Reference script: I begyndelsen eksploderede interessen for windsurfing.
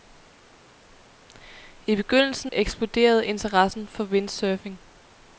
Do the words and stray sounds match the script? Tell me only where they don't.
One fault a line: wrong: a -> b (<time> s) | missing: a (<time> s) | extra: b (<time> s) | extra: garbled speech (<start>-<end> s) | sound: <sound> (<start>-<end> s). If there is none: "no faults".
no faults